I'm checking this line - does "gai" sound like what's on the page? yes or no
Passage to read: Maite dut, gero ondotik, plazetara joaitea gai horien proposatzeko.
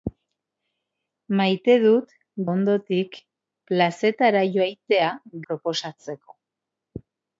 no